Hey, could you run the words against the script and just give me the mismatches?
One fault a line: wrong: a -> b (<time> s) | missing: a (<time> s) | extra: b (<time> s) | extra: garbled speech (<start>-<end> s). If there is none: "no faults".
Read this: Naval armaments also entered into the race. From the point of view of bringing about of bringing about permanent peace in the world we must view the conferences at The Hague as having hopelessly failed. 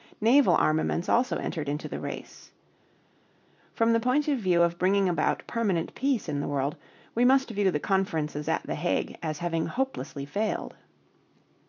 missing: of bringing about (5.5 s)